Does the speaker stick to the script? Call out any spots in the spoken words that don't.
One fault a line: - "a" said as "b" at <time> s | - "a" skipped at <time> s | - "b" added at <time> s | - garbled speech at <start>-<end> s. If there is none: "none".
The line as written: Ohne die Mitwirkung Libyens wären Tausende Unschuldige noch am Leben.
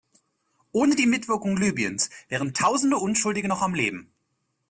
none